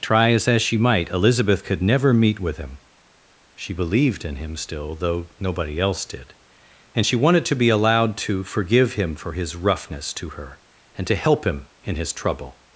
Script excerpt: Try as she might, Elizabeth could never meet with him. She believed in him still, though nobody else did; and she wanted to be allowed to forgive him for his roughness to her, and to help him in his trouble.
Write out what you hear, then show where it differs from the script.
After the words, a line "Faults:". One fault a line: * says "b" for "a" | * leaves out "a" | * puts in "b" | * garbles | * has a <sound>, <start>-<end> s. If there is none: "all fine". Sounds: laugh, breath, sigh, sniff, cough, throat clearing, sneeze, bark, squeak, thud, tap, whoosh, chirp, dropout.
Try as as she might, Elizabeth could never meet with him. She believed in him still, though nobody else did; and she wanted to be allowed to forgive him for his roughness to her, and to help him in his trouble.
Faults:
* puts in "as"